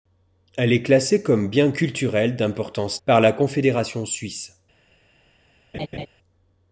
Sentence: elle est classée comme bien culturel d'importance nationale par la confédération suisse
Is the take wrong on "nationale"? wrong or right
wrong